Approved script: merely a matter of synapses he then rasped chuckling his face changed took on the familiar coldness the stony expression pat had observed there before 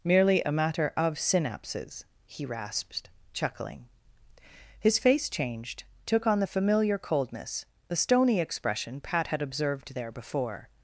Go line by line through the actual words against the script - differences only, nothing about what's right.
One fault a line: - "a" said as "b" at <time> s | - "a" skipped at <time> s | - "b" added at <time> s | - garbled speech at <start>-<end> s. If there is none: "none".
- "then" skipped at 2.5 s